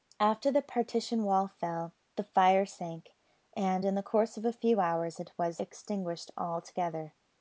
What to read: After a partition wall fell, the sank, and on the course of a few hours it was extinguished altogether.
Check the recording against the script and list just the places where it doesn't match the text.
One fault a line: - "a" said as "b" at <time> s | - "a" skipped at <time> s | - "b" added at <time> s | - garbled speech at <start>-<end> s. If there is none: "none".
- "a" said as "the" at 0.5 s
- "fire" added at 2.2 s
- "on" said as "in" at 3.8 s